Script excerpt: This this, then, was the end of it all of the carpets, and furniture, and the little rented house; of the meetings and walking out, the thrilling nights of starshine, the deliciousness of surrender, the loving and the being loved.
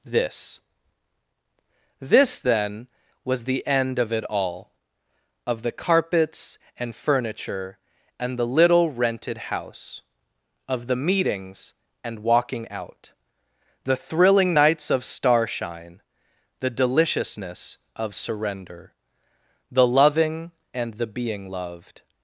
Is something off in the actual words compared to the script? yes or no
no